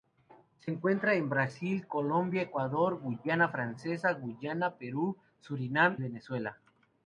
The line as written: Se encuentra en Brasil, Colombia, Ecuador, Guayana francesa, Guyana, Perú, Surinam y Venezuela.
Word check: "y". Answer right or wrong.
wrong